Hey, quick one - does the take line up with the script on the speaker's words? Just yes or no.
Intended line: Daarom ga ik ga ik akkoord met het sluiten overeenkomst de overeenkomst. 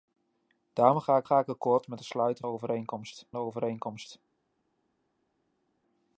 yes